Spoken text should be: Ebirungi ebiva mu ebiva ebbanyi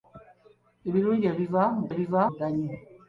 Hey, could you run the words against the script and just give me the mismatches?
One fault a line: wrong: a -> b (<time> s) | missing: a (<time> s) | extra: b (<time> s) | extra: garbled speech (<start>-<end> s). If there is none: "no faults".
no faults